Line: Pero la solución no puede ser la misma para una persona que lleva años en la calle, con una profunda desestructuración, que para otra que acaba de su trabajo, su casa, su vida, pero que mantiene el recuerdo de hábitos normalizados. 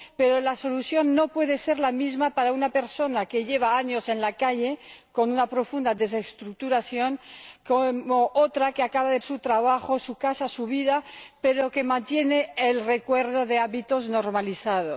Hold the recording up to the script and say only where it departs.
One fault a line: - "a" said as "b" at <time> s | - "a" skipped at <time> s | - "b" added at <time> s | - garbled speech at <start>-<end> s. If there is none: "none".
none